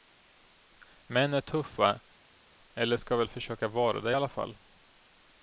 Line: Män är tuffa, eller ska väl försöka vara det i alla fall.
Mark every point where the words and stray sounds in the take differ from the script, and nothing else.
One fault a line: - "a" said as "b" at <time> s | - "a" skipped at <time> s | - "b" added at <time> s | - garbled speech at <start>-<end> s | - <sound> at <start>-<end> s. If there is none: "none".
none